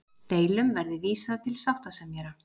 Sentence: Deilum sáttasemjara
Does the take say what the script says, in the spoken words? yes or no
no